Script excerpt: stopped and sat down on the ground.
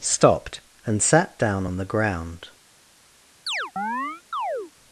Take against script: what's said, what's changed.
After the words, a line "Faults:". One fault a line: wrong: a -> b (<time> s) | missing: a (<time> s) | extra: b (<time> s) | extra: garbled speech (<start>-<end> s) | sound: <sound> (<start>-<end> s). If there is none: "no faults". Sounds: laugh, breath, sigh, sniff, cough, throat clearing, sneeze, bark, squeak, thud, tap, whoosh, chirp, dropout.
stopped and sat down on the ground.
Faults:
sound: chirp (3.5-4.7 s)